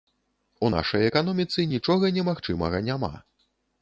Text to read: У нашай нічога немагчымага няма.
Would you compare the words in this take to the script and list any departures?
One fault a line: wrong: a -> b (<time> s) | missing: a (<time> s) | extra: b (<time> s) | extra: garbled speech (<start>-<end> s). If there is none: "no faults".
extra: эканоміцы (1.0 s)